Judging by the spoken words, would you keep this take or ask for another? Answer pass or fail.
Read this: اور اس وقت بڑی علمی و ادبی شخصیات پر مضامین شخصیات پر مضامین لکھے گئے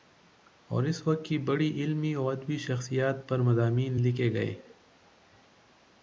fail